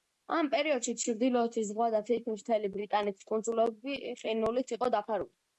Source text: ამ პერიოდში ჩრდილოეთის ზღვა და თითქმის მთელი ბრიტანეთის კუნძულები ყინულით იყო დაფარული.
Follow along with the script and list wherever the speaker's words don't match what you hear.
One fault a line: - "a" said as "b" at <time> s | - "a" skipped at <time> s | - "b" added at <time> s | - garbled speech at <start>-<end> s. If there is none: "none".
none